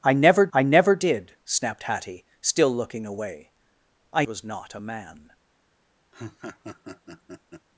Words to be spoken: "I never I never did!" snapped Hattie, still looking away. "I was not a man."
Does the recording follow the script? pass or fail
pass